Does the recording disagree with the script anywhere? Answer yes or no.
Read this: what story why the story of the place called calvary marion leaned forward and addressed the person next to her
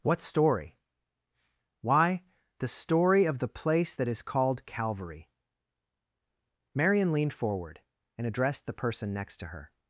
yes